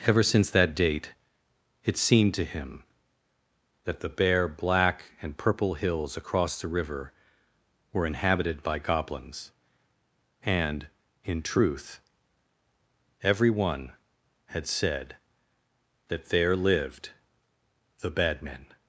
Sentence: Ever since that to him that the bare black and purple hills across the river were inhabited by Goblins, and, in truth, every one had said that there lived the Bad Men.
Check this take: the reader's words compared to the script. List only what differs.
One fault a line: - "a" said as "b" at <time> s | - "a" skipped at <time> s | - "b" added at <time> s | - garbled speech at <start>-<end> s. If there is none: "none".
- "date it seemed" added at 0.7 s